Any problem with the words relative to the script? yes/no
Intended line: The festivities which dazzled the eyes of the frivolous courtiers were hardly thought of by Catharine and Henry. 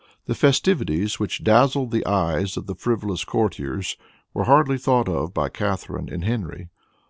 no